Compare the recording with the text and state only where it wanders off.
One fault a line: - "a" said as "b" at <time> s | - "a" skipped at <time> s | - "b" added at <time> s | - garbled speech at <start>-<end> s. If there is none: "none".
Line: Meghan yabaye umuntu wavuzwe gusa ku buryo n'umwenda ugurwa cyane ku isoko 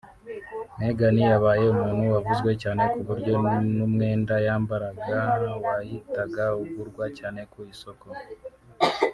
- "gusa" said as "cyane" at 2.6 s
- "yambaraga wahitaga" added at 4.5 s